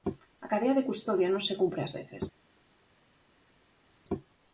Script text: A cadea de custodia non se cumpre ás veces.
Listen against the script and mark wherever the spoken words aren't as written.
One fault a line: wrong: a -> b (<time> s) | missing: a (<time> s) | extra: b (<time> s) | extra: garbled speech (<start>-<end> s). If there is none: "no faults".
no faults